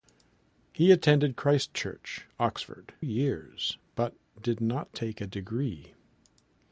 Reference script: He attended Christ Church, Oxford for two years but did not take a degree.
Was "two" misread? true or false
true